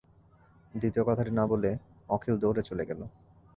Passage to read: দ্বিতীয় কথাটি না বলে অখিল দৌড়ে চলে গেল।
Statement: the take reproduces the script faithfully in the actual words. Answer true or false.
true